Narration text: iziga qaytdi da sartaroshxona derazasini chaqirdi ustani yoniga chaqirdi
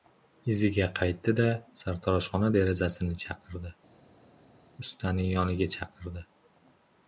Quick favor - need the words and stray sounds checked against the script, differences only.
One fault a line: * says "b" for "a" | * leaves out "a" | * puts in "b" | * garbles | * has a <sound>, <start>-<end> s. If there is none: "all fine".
all fine